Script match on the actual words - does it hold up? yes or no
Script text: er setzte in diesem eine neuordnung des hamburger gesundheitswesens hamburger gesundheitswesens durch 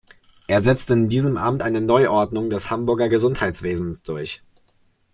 no